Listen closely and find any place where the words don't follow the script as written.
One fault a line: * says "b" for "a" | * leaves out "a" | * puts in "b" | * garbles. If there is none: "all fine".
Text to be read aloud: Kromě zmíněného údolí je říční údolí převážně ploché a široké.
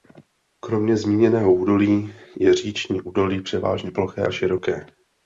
all fine